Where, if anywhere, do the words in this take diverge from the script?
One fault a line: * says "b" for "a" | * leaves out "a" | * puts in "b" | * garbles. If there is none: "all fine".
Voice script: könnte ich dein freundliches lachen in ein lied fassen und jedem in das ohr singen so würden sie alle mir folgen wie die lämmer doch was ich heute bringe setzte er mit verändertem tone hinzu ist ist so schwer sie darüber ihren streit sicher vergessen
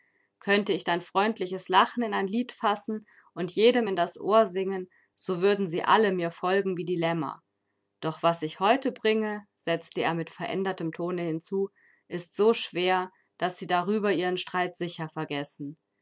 * leaves out "ist"
* puts in "daß"